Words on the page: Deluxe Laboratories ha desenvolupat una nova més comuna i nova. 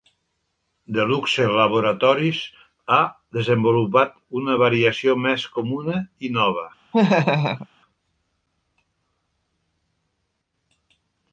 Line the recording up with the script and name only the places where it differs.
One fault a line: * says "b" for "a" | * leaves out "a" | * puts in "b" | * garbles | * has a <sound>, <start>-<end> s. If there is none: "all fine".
* says "variació" for "nova"
* has a laugh, 6.9-7.7 s